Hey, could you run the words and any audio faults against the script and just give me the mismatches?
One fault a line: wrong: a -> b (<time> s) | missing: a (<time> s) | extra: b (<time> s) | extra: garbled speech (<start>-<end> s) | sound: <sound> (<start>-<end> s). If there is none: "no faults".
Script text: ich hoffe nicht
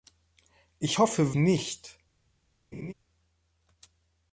sound: laugh (2.7-2.9 s)